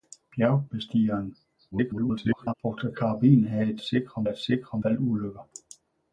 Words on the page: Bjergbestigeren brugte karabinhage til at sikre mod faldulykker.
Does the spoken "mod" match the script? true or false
false